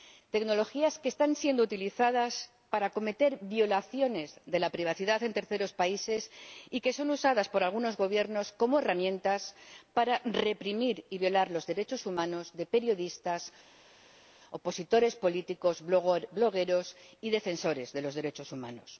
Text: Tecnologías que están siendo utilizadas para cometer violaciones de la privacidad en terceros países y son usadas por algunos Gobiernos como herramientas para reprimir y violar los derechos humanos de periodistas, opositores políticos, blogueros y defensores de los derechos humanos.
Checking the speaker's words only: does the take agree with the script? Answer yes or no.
no